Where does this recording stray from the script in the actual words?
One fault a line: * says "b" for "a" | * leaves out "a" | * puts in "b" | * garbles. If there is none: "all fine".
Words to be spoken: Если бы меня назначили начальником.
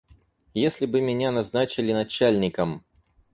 all fine